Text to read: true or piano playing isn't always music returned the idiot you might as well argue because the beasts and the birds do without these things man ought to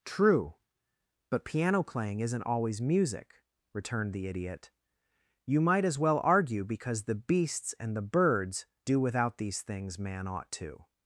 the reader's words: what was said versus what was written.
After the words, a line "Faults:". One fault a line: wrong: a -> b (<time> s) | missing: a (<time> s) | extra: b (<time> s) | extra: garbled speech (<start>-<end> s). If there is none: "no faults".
true but piano playing isn't always music returned the idiot you might as well argue because the beasts and the birds do without these things man ought to
Faults:
wrong: or -> but (1.3 s)